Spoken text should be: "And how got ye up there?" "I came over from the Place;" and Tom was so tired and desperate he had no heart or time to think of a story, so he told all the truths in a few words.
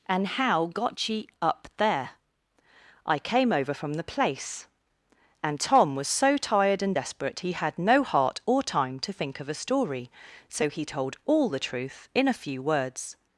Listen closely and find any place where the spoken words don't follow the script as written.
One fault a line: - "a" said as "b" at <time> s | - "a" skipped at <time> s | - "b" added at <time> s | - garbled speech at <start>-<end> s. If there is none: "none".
- "truths" said as "truth" at 11.6 s